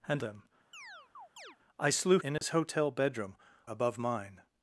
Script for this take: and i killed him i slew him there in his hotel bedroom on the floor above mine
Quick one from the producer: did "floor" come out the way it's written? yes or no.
no